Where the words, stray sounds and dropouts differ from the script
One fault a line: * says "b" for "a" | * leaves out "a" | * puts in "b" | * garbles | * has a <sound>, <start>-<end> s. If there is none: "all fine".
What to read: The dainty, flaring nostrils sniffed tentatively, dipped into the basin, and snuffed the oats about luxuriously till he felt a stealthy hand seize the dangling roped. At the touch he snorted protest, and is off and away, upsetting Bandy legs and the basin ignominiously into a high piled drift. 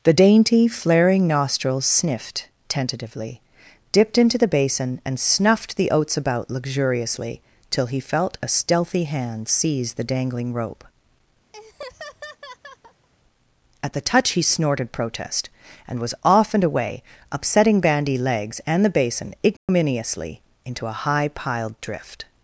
* says "rope" for "roped"
* has a laugh, 11.5-13.1 s
* says "was" for "is"
* has a dropout, 19.6-19.7 s